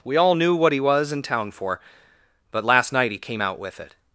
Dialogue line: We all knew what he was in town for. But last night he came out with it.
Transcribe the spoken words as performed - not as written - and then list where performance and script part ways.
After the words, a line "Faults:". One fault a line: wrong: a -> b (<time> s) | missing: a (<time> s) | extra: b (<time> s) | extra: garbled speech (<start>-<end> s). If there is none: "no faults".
We all knew what he was in town for. But last night he came out with it.
Faults:
no faults